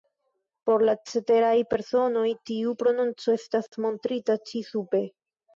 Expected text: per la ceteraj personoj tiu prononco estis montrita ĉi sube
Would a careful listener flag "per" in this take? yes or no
yes